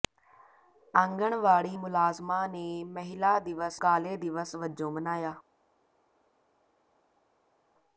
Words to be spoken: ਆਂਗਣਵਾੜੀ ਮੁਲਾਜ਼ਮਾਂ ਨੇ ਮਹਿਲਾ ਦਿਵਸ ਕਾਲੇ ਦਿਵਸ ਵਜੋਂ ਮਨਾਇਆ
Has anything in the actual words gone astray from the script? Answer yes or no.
no